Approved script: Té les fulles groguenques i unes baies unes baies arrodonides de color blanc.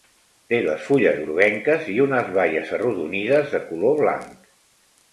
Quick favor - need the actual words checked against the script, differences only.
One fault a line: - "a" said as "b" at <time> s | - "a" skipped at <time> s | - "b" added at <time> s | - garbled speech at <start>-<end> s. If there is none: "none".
- "unes baies" skipped at 2.7 s